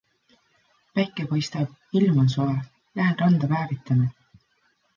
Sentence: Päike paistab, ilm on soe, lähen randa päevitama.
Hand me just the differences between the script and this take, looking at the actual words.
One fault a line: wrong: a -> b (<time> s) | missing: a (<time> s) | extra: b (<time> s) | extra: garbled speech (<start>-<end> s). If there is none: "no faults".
no faults